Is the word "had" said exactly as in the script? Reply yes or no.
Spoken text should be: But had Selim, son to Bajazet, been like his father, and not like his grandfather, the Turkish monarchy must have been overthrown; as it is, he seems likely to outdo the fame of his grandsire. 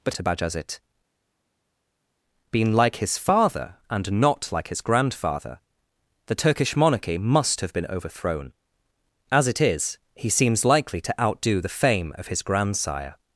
no